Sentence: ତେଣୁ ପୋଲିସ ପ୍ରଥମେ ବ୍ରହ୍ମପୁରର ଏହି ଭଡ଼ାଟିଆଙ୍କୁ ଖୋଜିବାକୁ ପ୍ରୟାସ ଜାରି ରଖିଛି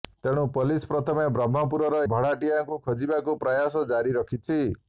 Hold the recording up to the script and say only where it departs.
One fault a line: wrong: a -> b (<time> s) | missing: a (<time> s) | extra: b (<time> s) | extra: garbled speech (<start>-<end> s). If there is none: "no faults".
missing: ଏହି (2.0 s)